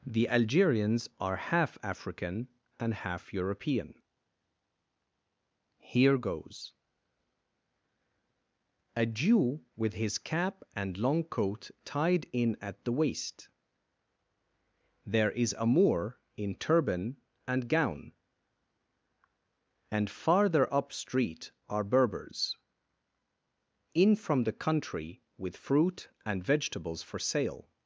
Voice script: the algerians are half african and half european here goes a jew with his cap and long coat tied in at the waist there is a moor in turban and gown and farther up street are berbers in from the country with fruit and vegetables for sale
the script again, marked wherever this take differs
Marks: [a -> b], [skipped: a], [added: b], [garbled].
the algerians are half african and half european here goes a jew with his cap and long coat tied in at the waist there is a moor in turban and gown and farther up street are berbers in from the country with fruit and vegetables for sale